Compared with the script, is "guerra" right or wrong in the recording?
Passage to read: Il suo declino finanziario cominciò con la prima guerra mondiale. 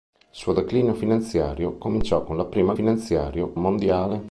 wrong